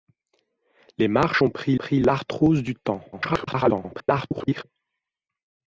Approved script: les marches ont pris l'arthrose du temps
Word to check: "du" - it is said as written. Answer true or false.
true